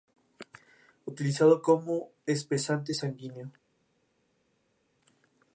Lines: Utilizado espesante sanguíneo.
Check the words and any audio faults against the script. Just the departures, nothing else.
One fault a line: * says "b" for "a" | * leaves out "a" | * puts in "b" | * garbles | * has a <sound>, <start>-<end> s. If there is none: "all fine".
* puts in "como"